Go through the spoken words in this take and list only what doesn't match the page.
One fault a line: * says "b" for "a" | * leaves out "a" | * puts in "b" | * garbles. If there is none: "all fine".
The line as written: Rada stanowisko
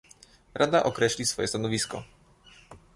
* puts in "określi swoje"